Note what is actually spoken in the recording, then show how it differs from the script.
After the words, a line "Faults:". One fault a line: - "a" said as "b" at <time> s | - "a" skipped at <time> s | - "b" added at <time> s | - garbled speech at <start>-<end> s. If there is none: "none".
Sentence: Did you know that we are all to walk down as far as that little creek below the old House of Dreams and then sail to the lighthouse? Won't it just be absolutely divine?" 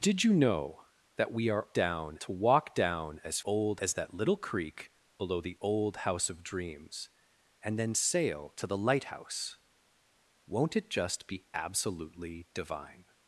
Did you know that we are down to walk down as old as that little creek below the old House of Dreams and then sail to the lighthouse? Won't it just be absolutely divine?"
Faults:
- "all" said as "down" at 1.7 s
- "far" said as "old" at 3.4 s